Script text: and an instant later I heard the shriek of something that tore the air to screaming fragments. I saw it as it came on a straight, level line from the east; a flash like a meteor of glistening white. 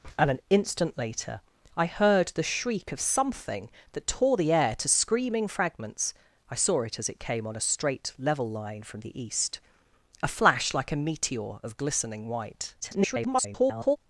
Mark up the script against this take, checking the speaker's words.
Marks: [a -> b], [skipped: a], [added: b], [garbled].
and an instant later I heard the shriek of something that tore the air to screaming fragments. I saw it as it came on a straight, level line from the east; a flash like a meteor of glistening white. [garbled]